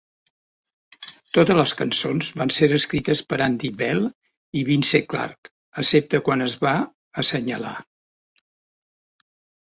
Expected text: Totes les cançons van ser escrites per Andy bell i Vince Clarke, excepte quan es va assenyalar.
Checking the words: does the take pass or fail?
pass